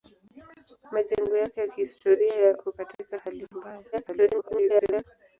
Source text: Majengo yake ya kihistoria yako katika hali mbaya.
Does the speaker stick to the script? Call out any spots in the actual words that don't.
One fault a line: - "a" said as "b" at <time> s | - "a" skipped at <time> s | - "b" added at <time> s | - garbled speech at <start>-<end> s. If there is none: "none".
- garbled speech at 3.9-5.0 s